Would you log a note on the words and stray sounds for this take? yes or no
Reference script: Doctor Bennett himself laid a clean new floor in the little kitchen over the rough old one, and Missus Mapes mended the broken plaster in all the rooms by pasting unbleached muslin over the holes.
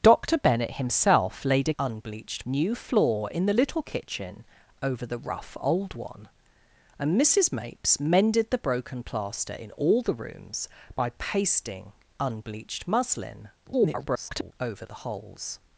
yes